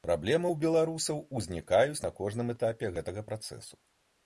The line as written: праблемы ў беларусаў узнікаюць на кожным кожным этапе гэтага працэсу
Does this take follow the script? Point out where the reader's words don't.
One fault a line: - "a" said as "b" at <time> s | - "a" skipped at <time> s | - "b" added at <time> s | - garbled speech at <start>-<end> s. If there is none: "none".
- "кожным" skipped at 2.5 s